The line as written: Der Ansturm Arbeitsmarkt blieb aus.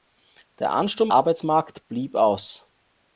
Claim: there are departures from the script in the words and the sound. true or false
false